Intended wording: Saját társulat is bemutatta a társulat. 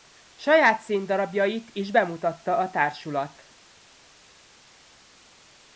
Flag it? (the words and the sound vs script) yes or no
yes